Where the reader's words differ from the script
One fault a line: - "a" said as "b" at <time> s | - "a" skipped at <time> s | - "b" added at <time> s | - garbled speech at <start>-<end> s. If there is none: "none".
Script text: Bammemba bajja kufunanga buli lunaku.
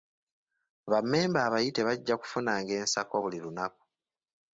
- "abayite" added at 1.5 s
- "ensako" added at 2.8 s